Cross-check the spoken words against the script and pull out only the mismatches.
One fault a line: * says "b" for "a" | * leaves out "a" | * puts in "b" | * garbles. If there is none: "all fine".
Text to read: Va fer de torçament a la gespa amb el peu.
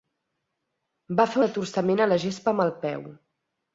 all fine